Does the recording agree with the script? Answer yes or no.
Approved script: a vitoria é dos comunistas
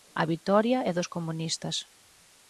yes